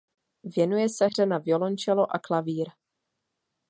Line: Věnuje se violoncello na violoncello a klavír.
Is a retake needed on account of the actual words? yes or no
yes